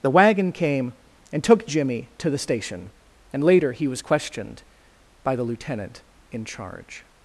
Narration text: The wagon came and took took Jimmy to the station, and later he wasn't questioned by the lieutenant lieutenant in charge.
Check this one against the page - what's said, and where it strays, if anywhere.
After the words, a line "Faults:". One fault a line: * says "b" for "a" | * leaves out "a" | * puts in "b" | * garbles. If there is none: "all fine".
The wagon came and took Jimmy to the station, and later he was questioned by the lieutenant in charge.
Faults:
* leaves out "took"
* says "was" for "wasn't"
* leaves out "lieutenant"